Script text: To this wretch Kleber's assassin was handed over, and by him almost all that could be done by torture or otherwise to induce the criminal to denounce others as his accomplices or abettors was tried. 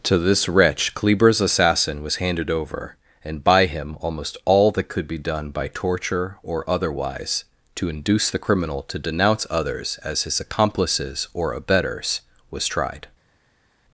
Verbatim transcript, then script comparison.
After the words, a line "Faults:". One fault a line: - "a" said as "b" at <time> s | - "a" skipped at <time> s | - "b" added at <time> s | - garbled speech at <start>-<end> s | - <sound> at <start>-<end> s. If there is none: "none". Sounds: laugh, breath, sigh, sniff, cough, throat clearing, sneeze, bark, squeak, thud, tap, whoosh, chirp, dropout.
To this wretch Kleber's assassin was handed over, and by him almost all that could be done by torture or otherwise to induce the criminal to denounce others as his accomplices or abettors was tried.
Faults:
none